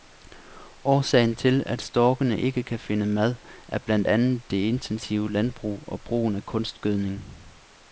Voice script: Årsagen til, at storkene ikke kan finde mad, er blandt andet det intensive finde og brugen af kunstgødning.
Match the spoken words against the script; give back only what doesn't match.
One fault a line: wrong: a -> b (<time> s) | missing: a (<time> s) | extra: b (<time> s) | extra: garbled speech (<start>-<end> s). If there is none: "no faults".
wrong: finde -> landbrug (5.3 s)